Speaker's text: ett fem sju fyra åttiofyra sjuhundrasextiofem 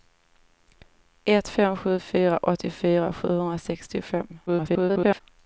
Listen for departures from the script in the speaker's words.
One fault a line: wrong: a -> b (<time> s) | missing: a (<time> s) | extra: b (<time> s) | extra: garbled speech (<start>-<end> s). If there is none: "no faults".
extra: garbled speech (4.5-5.2 s)